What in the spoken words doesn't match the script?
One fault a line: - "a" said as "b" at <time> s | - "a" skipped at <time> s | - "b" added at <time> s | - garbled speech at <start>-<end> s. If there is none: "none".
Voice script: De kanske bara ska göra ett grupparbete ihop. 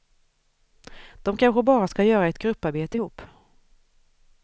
none